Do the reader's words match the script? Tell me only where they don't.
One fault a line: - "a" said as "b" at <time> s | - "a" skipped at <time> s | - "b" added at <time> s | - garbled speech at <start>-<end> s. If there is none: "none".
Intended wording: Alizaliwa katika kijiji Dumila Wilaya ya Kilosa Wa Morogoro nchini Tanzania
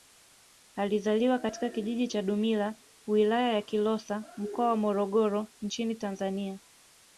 - "cha" added at 2.0 s
- "Mkoa" added at 4.4 s